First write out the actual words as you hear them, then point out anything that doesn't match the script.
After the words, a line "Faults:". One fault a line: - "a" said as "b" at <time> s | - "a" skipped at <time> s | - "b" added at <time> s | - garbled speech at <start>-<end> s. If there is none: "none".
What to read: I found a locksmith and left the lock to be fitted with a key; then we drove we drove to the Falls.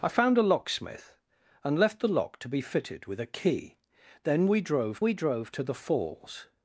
I found a locksmith and left the lock to be fitted with a key; then we drove we drove to the Falls.
Faults:
none